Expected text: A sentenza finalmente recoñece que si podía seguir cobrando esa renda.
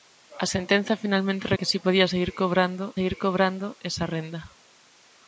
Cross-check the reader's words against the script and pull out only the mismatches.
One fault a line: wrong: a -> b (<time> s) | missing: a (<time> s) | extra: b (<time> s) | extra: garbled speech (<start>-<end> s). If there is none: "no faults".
missing: recoñece (1.5 s)
extra: seguir cobrando (3.0 s)